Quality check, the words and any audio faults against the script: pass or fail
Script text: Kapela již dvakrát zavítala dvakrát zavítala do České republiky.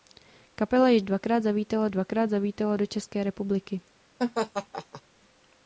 fail